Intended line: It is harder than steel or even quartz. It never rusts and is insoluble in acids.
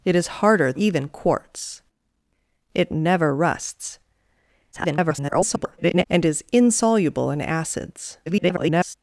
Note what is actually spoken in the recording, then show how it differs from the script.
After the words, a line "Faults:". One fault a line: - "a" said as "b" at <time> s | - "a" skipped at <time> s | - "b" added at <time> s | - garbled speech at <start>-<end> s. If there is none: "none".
It is harder even quartz. It never rusts [garbled] and is insoluble in acids. [garbled]
Faults:
- "than steel or" skipped at 0.7 s
- garbled speech at 4.7-6.1 s
- garbled speech at 8.3-8.9 s